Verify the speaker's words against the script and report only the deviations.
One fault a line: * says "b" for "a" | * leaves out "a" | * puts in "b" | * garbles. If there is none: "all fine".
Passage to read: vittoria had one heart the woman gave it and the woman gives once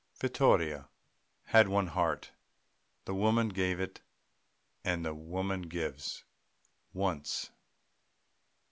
all fine